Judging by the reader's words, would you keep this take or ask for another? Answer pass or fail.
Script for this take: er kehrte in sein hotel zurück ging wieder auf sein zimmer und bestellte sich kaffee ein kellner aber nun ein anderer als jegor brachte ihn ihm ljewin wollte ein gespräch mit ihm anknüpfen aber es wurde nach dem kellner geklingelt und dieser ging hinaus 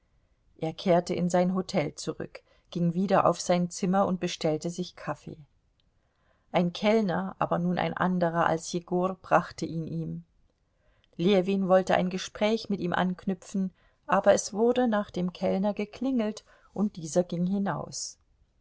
pass